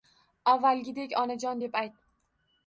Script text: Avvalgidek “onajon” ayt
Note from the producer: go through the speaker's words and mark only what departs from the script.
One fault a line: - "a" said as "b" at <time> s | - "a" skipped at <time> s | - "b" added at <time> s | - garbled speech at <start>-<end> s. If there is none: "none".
- "deb" added at 1.6 s